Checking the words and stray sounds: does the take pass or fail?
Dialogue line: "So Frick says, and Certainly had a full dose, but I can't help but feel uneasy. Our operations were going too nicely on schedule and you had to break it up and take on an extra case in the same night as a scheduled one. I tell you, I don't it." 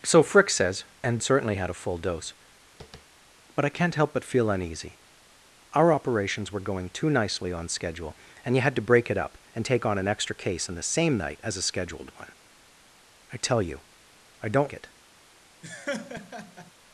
fail